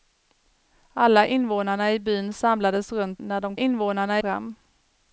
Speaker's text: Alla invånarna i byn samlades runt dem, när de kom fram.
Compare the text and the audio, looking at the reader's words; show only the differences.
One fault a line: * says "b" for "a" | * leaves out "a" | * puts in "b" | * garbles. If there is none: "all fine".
* leaves out "dem"
* says "invånarna" for "kom"